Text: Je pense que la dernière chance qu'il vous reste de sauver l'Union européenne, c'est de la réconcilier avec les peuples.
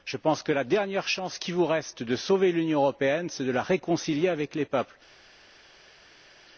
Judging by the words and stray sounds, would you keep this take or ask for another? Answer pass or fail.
pass